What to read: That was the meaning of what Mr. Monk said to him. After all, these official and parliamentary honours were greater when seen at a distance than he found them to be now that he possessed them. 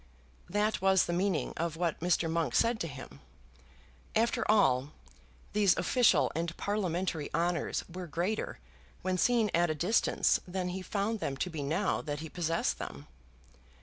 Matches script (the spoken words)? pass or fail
pass